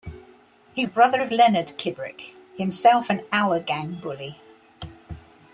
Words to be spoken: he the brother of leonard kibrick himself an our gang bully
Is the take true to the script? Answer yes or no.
yes